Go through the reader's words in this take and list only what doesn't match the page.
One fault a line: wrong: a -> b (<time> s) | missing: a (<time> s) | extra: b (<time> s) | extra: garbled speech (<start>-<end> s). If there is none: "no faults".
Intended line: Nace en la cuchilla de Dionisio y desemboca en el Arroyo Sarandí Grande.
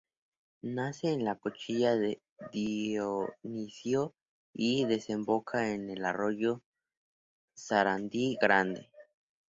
no faults